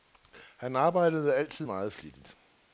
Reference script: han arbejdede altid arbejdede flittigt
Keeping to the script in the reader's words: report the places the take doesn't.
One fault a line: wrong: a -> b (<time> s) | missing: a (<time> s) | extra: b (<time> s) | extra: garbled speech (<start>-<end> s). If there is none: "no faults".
wrong: arbejdede -> meget (1.6 s)